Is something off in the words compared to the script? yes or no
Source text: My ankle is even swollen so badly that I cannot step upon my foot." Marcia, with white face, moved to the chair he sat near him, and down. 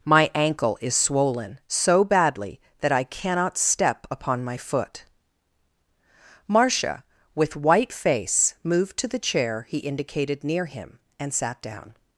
yes